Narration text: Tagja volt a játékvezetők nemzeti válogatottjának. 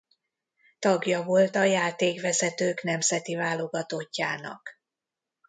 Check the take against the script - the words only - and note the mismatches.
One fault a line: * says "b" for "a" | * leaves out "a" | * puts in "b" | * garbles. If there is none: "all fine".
all fine